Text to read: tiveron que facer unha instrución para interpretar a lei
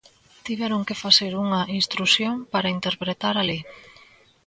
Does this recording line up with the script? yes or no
yes